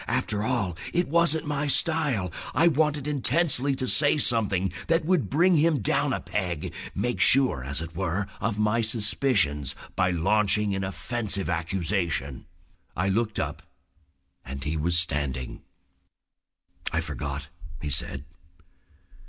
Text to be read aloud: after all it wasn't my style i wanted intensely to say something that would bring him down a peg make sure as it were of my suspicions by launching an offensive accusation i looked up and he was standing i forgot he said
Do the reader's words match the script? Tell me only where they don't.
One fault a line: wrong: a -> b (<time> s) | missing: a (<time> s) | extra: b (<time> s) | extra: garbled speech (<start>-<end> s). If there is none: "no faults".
no faults